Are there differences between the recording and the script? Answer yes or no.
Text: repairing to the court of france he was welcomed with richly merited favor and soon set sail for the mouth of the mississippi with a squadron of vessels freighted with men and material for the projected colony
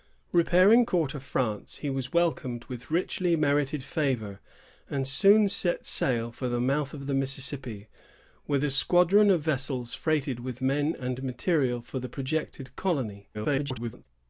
yes